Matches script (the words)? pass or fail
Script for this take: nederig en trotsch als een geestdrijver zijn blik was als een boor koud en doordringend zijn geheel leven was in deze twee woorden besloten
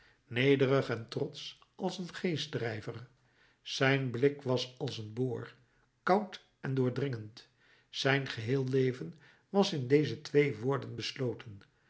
pass